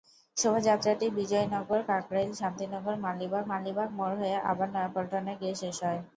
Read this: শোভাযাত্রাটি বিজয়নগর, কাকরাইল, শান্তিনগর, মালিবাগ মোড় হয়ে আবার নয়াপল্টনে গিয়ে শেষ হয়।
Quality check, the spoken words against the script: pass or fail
fail